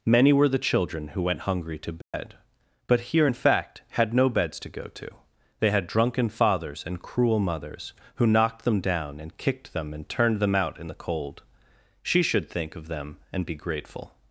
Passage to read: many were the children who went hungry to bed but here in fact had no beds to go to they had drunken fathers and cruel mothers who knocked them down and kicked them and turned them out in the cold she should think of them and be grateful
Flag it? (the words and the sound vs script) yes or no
yes